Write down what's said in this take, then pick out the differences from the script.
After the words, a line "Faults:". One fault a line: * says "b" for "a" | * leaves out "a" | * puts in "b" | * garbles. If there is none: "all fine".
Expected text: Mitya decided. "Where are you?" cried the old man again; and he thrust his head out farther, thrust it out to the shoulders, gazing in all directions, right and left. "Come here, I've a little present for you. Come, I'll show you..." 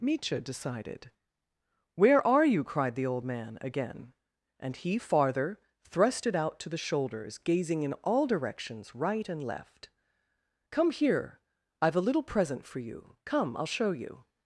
Mitya decided. "Where are you?" cried the old man again; and he farther, thrust it out to the shoulders, gazing in all directions, right and left. "Come here, I've a little present for you. Come, I'll show you..."
Faults:
* leaves out "thrust his head out"